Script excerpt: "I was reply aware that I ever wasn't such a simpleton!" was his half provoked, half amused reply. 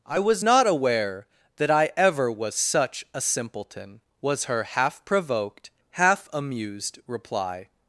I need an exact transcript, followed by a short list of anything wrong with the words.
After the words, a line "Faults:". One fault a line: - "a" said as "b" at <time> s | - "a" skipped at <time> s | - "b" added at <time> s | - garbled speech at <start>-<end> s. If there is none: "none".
"I was not aware that I ever was such a simpleton!" was her half provoked, half amused reply.
Faults:
- "reply" said as "not" at 0.4 s
- "wasn't" said as "was" at 2.3 s
- "his" said as "her" at 4.4 s